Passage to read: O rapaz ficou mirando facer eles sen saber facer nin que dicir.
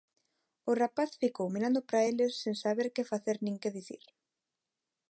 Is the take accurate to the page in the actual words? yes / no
no